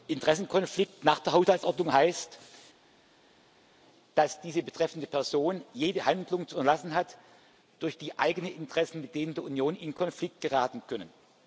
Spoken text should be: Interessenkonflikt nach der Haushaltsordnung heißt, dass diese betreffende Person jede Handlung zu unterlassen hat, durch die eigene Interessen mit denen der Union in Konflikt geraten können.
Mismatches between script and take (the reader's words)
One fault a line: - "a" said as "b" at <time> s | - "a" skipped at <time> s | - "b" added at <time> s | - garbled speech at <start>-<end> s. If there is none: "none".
none